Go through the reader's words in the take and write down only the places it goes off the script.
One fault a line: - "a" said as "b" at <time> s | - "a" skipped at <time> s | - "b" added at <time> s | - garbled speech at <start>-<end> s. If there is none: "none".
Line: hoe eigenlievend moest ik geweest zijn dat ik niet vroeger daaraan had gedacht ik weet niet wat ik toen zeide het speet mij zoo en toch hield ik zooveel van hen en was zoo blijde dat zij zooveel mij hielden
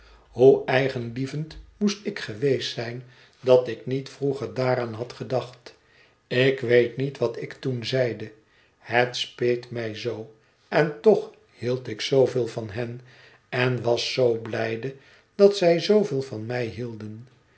- "van" added at 16.2 s